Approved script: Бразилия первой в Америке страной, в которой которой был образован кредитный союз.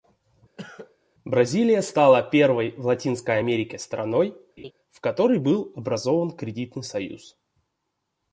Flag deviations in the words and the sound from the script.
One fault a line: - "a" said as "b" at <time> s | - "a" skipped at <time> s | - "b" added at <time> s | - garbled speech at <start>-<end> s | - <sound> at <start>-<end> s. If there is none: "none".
- cough at 0.6-1.0 s
- "стала" added at 1.8 s
- "Латинской" added at 2.9 s
- laugh at 4.6-4.7 s
- "которой" skipped at 5.4 s